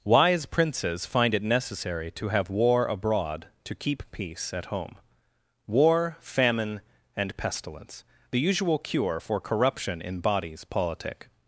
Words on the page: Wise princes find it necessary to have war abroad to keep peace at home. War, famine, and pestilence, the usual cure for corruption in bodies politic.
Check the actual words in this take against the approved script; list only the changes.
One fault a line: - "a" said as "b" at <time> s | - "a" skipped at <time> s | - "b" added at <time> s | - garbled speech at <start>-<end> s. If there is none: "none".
none